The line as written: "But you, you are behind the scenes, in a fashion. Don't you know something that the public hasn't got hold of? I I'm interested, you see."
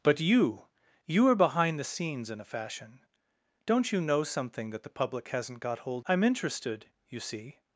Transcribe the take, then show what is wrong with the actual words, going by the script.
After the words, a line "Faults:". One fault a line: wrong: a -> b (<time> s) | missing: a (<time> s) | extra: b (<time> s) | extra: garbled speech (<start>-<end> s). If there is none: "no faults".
"But you, you are behind the scenes, in a fashion. Don't you know something that the public hasn't got hold I'm interested, you see."
Faults:
missing: of I (6.0 s)